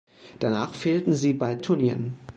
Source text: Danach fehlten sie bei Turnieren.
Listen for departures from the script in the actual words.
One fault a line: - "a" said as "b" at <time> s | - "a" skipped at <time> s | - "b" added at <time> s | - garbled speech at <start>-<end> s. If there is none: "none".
none